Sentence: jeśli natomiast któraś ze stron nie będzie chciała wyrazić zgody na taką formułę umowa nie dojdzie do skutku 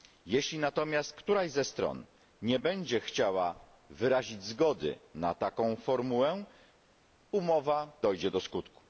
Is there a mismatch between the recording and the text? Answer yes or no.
yes